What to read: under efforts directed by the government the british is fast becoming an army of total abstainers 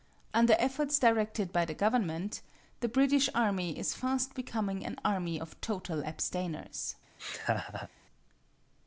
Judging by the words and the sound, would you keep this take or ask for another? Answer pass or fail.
fail